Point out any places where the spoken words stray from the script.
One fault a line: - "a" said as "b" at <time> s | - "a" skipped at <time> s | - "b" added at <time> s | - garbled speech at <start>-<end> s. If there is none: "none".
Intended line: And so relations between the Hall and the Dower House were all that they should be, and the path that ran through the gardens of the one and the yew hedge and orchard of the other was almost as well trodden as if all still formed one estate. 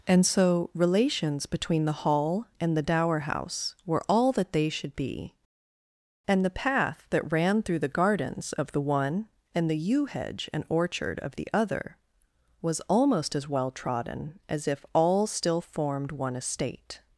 none